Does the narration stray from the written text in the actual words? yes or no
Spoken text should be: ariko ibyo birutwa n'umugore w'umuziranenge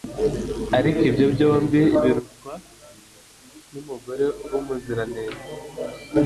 yes